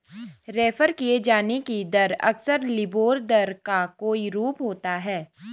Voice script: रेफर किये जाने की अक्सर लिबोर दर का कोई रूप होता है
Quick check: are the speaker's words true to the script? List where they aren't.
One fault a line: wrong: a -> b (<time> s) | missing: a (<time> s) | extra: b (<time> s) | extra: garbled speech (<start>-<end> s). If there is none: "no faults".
extra: दर (1.9 s)